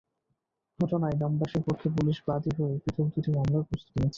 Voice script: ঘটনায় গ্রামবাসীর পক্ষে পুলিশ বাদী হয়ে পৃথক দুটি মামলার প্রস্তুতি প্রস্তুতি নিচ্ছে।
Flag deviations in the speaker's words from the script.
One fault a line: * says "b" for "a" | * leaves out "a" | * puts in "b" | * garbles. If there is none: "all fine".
* leaves out "প্রস্তুতি"